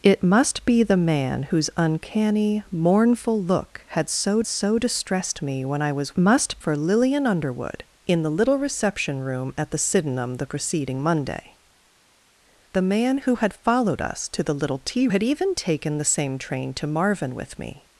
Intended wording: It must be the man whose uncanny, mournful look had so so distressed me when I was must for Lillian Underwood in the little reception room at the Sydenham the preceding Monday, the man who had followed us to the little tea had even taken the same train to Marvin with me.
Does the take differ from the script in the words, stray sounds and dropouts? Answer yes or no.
no